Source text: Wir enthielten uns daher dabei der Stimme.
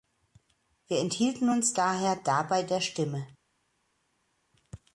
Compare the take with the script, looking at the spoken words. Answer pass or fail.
pass